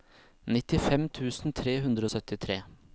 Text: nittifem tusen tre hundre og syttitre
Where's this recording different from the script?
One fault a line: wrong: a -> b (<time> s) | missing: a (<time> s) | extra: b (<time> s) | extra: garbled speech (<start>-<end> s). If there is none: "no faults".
no faults